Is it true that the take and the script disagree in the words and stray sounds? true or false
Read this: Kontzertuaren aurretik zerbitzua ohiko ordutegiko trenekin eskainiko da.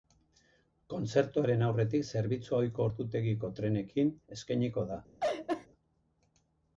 true